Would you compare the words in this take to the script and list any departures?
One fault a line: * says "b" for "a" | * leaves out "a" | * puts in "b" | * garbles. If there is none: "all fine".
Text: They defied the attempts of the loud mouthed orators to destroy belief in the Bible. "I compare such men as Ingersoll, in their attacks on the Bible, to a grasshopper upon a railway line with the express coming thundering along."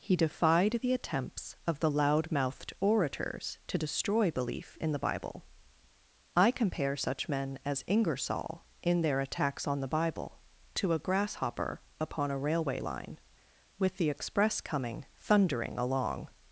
* says "He" for "They"